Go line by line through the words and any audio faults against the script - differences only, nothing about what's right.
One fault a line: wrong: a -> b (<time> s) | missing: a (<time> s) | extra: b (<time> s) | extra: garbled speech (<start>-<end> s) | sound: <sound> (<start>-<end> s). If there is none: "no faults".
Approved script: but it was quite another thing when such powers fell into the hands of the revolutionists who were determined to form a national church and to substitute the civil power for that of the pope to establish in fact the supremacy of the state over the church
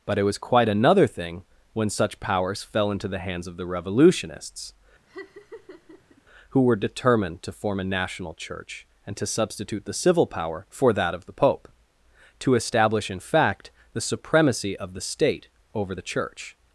sound: laugh (5.1-6.2 s)